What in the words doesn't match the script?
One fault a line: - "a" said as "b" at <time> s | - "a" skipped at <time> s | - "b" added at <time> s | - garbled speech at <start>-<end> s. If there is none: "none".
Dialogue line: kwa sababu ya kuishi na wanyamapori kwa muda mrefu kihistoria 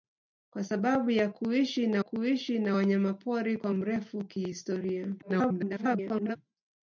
- "kuishi na" added at 2.0 s
- "muda" skipped at 3.7 s
- garbled speech at 5.2-6.4 s